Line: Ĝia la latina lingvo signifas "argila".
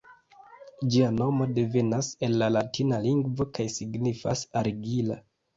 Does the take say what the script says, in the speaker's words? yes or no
no